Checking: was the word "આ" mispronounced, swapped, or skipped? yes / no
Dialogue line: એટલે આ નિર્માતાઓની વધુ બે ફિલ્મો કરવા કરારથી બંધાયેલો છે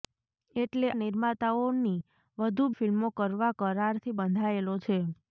yes